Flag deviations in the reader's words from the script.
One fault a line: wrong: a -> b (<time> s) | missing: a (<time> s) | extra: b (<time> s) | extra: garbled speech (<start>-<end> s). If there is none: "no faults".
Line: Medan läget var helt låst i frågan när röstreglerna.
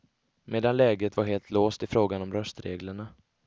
wrong: när -> om (2.2 s)